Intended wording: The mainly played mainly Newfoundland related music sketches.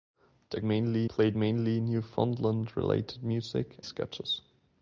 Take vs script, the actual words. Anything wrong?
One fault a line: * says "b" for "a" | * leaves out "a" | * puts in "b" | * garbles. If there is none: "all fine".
all fine